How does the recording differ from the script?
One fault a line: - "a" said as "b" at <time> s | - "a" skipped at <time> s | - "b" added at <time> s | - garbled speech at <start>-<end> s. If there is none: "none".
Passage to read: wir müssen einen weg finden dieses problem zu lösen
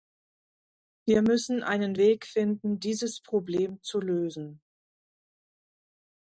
none